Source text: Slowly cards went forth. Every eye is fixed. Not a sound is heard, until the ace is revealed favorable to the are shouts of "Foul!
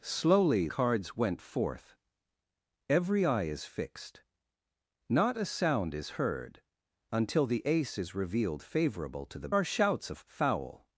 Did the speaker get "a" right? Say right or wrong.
right